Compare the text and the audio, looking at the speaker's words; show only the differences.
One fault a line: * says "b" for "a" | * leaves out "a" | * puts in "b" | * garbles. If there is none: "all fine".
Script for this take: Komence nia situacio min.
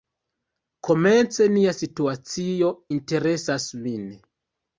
* puts in "interesas"